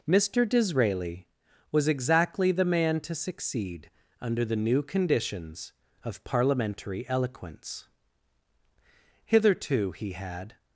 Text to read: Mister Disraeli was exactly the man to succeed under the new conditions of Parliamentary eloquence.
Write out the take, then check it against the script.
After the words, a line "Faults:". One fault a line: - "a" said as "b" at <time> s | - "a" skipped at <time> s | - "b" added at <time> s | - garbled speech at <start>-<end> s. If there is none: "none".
Mister Disraeli was exactly the man to succeed under the new conditions of Parliamentary eloquence. Hitherto he had
Faults:
- "Hitherto he had" added at 9.3 s